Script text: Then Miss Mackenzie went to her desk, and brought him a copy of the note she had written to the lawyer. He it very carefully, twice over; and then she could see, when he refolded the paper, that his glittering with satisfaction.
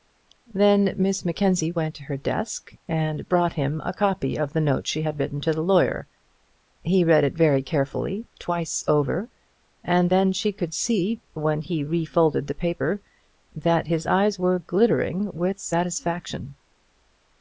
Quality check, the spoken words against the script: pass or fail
fail